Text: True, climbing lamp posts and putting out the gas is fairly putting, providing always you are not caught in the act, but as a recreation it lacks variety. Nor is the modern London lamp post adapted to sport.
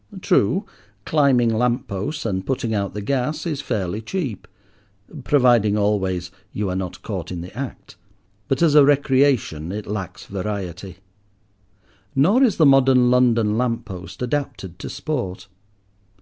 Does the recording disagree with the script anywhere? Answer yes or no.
yes